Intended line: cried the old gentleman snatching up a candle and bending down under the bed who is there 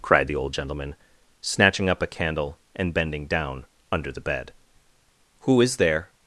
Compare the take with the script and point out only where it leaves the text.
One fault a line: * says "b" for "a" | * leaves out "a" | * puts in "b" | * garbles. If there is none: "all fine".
all fine